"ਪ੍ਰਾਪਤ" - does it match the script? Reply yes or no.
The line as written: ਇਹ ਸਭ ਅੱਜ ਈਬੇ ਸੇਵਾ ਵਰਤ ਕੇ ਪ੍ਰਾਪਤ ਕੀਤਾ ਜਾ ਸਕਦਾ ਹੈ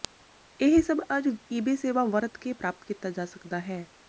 yes